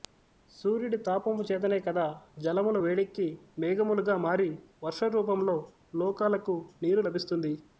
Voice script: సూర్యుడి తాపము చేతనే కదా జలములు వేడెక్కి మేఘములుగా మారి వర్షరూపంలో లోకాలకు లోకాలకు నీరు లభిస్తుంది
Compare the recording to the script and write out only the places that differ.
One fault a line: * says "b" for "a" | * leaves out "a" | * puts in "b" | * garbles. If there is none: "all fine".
* leaves out "లోకాలకు"